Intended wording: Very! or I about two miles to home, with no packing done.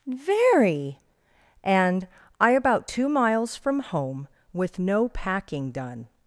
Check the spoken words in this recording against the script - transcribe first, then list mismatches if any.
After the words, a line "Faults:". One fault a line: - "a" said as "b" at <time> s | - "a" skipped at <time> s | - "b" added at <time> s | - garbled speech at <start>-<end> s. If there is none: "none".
Very! and I about two miles from home, with no packing done.
Faults:
- "or" said as "and" at 1.6 s
- "to" said as "from" at 3.6 s